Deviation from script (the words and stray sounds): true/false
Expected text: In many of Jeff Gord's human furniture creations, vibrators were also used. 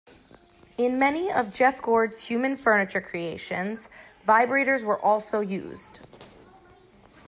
false